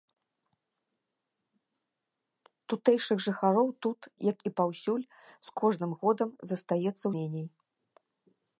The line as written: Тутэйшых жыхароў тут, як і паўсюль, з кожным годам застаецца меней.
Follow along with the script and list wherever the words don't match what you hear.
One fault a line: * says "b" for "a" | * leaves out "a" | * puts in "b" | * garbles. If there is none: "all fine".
all fine